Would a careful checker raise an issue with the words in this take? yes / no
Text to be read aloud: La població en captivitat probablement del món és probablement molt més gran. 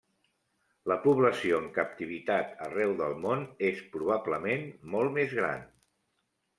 yes